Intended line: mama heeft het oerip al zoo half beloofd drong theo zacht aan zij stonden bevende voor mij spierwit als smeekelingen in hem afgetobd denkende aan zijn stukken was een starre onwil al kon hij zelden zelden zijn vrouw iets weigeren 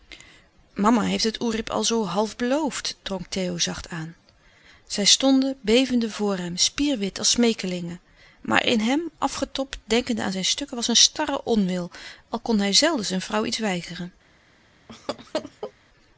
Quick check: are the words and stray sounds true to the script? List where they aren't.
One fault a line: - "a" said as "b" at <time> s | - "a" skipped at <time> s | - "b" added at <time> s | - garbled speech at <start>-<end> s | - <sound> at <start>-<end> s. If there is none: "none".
- "mij" said as "hem" at 6.4 s
- "maar" added at 8.4 s
- "zelden" skipped at 13.0 s
- laugh at 14.9-15.7 s